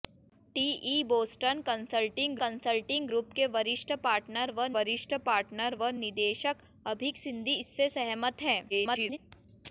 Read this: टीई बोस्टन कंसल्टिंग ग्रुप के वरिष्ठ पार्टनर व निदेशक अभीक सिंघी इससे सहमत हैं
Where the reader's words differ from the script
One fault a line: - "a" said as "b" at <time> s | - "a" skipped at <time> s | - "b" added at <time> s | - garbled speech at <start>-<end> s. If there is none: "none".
- "कंसल्टिंग" added at 2.4 s
- "वरिष्ठ पार्टनर व" added at 4.8 s
- garbled speech at 8.7-9.2 s